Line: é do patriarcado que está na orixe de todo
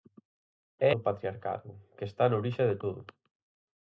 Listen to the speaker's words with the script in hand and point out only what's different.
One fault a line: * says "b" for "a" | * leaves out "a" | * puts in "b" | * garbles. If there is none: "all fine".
all fine